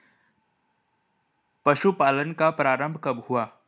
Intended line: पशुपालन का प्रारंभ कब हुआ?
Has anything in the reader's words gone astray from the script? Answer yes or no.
no